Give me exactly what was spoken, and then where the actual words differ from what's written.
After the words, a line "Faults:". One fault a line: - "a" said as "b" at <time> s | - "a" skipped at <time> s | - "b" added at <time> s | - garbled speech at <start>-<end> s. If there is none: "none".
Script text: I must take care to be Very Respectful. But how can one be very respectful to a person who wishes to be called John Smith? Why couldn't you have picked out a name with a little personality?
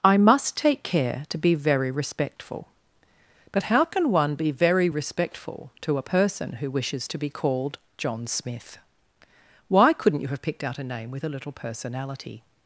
I must take care to be Very Respectful. But how can one be very respectful to a person who wishes to be called John Smith? Why couldn't you have picked out a name with a little personality?
Faults:
none